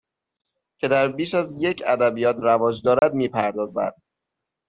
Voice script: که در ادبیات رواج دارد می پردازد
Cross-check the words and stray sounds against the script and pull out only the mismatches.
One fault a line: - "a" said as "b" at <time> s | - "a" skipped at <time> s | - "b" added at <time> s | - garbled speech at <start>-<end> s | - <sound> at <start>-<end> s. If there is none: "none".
- "بیش از یک" added at 1.1 s
- dropout at 3.0-3.0 s